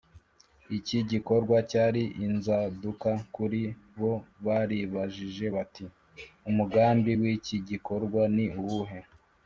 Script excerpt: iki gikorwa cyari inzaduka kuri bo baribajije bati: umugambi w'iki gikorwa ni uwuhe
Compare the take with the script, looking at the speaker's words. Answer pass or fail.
pass